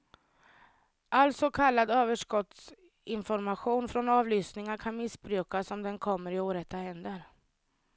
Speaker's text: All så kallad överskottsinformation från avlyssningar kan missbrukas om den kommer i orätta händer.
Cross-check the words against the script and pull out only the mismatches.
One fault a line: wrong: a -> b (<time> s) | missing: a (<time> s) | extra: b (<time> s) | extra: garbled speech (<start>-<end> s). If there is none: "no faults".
no faults